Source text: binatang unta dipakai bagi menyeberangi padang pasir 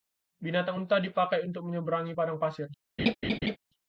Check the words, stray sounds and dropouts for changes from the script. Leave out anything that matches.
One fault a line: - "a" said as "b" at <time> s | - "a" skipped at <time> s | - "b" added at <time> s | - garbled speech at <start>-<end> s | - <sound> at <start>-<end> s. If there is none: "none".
- "bagi" said as "untuk" at 1.5 s
- laugh at 3.0-3.6 s